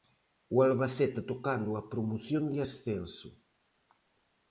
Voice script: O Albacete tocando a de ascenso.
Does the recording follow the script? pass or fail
fail